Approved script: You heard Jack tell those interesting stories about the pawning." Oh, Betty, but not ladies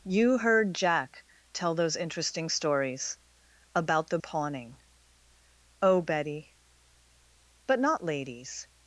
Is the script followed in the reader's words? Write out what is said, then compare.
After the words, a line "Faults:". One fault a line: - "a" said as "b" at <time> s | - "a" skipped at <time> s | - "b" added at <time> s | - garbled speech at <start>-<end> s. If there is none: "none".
You heard Jack tell those interesting stories about the pawning." Oh, Betty, but not ladies
Faults:
none